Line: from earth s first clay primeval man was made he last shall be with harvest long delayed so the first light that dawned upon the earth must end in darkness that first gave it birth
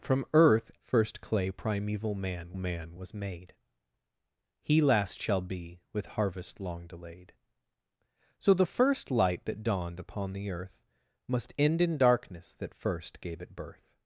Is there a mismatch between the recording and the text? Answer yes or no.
yes